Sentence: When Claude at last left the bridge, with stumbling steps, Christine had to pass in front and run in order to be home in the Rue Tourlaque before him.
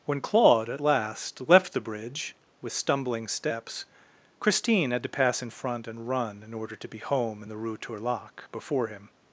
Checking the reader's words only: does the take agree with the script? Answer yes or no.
yes